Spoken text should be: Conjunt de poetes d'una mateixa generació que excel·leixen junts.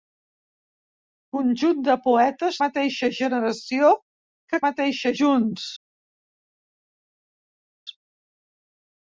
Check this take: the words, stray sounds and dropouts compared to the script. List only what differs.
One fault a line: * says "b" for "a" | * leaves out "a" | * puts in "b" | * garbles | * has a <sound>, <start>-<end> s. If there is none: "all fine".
* leaves out "d'una"
* says "mateixa" for "excel·leixen"